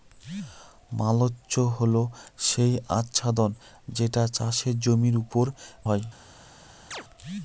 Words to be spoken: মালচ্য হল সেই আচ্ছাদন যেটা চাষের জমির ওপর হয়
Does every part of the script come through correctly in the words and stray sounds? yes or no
no